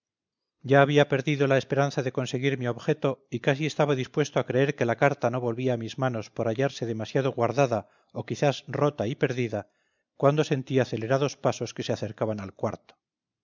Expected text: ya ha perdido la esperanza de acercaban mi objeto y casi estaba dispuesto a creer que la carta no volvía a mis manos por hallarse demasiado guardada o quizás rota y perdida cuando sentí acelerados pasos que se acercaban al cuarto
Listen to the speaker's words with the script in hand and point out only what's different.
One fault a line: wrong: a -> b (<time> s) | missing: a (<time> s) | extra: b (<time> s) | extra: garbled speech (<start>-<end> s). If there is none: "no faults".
wrong: ha -> había (0.8 s)
wrong: acercaban -> conseguir (2.1 s)